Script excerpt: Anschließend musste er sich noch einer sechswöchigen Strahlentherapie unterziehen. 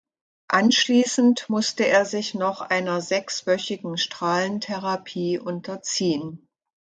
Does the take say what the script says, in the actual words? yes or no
yes